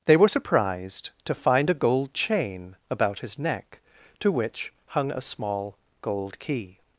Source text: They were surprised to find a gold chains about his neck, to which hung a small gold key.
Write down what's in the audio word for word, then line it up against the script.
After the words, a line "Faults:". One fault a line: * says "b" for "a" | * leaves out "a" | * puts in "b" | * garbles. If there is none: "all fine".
They were surprised to find a gold chain about his neck, to which hung a small gold key.
Faults:
* says "chain" for "chains"